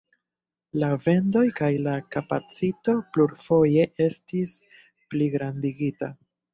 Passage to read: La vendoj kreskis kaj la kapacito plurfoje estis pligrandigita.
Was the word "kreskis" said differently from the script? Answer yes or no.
yes